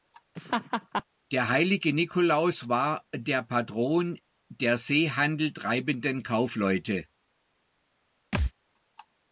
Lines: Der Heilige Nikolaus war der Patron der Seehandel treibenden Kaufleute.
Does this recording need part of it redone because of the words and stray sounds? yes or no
yes